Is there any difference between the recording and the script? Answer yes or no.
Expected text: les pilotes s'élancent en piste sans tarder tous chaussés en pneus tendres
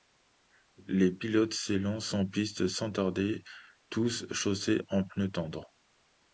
no